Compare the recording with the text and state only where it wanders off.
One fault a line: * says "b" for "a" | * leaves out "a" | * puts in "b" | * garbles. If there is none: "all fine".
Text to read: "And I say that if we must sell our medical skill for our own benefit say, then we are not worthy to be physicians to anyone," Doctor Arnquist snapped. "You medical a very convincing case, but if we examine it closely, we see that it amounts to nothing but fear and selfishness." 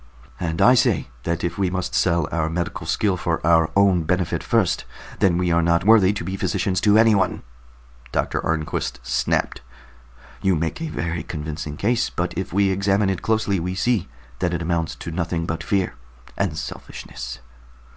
* says "first" for "say"
* says "make" for "medical"